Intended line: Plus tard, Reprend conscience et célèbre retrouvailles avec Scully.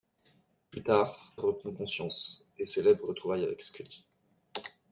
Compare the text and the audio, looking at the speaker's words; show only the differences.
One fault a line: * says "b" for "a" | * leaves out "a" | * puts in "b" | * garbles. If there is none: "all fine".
all fine